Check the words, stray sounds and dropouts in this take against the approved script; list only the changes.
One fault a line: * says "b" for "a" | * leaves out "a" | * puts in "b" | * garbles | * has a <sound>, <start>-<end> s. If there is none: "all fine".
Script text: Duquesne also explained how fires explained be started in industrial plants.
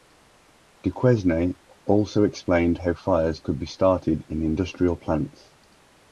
* says "could" for "explained"